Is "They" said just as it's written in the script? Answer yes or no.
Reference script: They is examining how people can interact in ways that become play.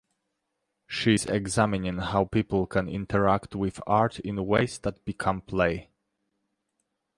no